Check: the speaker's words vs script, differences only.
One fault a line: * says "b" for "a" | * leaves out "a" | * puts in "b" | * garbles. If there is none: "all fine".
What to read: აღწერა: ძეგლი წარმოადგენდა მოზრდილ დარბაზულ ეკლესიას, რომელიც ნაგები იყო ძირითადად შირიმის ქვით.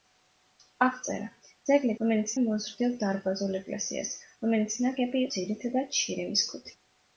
* says "რომელიც" for "წარმოადგენდა"
* leaves out "იყო"